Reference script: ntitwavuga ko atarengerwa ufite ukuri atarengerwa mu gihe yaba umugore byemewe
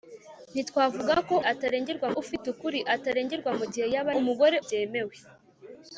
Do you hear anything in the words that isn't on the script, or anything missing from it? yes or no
no